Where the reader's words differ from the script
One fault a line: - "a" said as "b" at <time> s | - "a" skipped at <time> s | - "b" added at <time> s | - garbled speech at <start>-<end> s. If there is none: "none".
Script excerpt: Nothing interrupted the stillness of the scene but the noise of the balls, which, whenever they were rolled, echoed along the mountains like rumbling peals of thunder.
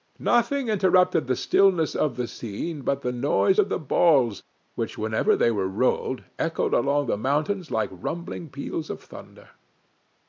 none